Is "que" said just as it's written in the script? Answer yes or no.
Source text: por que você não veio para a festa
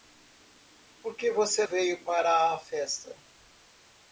yes